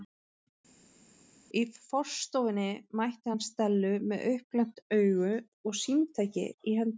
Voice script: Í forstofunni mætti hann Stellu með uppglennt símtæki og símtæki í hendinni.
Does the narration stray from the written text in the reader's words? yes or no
yes